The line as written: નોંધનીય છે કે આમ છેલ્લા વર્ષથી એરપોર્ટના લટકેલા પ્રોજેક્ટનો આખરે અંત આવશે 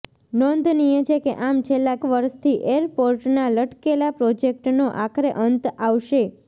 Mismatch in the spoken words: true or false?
false